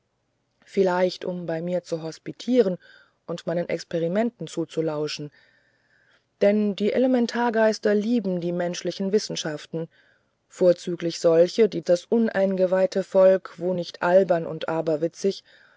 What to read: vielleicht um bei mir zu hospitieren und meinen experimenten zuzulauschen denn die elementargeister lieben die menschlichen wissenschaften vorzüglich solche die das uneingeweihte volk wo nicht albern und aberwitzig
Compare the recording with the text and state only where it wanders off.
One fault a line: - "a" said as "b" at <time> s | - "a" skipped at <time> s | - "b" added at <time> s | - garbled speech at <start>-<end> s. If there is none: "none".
none